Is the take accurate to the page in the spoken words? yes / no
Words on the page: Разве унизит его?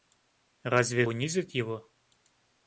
yes